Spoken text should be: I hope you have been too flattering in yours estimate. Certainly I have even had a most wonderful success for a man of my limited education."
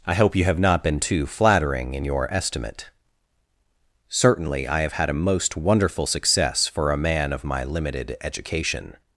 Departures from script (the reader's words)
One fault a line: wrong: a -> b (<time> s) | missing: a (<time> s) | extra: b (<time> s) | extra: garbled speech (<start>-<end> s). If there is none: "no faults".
extra: not (0.6 s)
wrong: yours -> your (2.0 s)
missing: even (4.9 s)